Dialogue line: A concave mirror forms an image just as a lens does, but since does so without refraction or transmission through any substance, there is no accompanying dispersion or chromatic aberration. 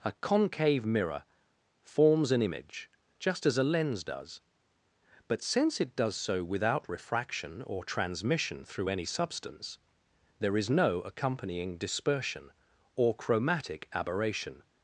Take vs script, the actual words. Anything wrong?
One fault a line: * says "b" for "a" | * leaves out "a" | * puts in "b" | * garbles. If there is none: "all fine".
* puts in "it"